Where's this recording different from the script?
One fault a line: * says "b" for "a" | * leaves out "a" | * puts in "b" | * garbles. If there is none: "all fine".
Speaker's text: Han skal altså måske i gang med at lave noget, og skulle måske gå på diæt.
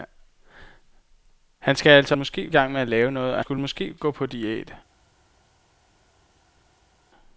all fine